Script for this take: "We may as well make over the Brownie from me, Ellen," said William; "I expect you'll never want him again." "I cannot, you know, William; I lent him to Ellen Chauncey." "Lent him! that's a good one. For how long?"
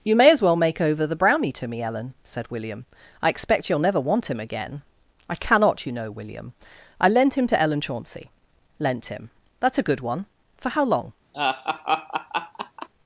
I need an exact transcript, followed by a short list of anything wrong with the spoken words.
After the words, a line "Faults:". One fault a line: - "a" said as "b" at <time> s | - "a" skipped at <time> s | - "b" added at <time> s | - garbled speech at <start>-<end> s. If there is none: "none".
"You may as well make over the Brownie to me, Ellen," said William; "I expect you'll never want him again." "I cannot, you know, William; I lent him to Ellen Chauncey." "Lent him! that's a good one. For how long?"
Faults:
- "We" said as "You" at 0.0 s
- "from" said as "to" at 1.5 s